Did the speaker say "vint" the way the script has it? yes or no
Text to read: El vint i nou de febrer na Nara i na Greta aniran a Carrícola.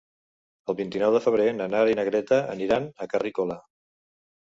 yes